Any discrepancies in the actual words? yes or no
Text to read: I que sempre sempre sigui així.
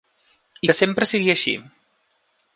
yes